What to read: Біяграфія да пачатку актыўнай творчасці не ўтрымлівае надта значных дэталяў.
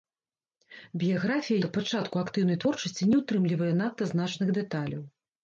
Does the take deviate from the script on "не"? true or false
false